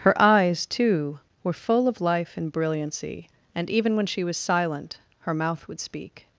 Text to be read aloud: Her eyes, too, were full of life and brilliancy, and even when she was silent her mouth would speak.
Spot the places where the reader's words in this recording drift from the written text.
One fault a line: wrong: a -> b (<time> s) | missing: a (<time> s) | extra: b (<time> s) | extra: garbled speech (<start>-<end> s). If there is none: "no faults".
no faults